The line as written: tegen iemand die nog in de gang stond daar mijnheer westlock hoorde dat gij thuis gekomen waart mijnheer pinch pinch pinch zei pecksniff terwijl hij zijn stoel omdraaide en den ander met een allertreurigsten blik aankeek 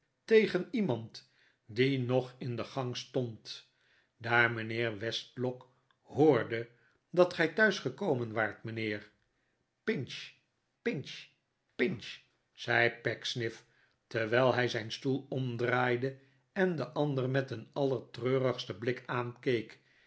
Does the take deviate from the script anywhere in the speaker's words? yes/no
no